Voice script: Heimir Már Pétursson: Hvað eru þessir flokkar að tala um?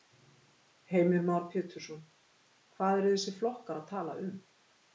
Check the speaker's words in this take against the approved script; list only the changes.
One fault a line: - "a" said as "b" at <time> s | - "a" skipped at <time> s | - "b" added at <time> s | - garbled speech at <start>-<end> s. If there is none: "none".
none